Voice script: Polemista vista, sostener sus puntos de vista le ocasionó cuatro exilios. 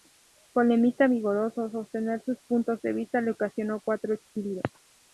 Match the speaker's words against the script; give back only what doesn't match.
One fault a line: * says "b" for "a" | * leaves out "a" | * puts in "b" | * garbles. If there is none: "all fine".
* says "vigoroso" for "vista"